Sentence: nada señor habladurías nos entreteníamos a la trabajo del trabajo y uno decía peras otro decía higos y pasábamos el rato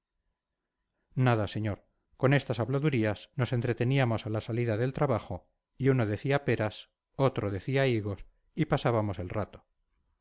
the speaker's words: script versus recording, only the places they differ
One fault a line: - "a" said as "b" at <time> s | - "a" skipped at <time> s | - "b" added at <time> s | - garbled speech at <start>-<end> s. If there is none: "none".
- "con estas" added at 2.2 s
- "trabajo" said as "salida" at 4.4 s